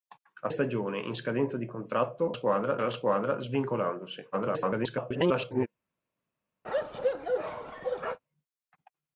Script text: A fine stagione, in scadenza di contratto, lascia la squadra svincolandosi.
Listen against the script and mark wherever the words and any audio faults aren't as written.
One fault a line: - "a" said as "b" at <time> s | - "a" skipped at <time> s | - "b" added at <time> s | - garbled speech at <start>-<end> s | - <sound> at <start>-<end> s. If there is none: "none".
- "fine" skipped at 0.5 s
- "lascia" said as "squadra" at 2.3 s
- garbled speech at 4.3-5.7 s
- bark at 6.6-8.2 s